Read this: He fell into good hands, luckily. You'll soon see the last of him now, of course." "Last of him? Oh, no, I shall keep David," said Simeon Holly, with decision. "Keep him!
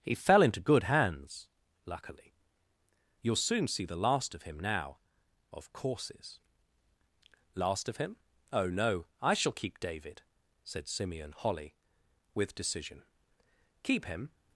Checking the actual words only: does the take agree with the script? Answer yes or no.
no